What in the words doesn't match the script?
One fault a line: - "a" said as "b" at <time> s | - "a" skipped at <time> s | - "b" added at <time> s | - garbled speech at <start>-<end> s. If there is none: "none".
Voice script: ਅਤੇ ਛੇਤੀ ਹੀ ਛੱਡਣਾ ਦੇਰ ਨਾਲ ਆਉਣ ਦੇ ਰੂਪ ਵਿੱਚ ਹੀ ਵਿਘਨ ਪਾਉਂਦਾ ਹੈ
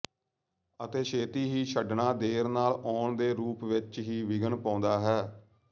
none